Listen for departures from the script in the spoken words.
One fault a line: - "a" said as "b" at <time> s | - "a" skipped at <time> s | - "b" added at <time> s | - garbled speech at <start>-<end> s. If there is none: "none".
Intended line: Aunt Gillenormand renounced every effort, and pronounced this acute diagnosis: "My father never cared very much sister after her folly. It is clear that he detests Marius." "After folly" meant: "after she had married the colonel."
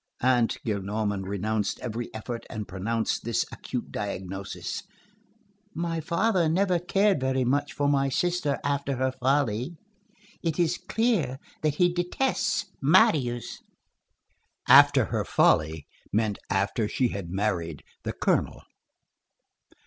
- "for my" added at 7.7 s
- "her" added at 15.1 s